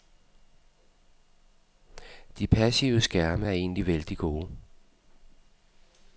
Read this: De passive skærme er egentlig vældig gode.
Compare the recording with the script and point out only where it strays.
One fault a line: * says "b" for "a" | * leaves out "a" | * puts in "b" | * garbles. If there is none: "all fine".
all fine